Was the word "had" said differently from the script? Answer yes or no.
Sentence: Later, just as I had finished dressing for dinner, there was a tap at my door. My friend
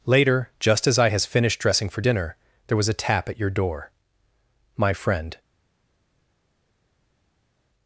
yes